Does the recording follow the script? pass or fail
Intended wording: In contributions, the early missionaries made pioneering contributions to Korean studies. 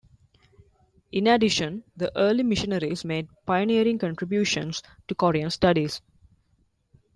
fail